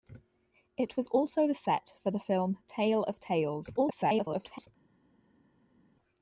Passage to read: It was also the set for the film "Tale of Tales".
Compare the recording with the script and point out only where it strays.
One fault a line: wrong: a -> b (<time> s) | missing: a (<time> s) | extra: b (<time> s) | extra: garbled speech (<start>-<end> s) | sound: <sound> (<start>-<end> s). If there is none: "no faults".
extra: garbled speech (3.8-4.7 s)